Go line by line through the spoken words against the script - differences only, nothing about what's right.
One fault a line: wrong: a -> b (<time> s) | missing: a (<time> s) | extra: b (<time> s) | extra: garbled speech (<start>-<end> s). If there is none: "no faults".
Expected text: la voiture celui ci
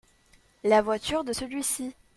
extra: de (1.2 s)